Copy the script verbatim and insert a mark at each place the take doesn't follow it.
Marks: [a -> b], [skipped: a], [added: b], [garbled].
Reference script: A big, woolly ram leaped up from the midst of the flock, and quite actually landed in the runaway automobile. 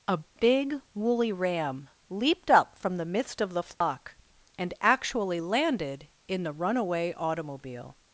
A big, woolly ram leaped up from the midst of the flock, and [skipped: quite] actually landed in the runaway automobile.